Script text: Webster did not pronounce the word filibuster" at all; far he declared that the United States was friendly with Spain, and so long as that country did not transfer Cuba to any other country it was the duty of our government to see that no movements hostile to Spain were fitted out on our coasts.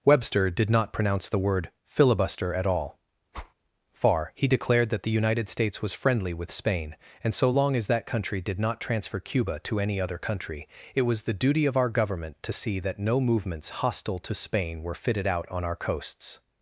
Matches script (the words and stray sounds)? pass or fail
fail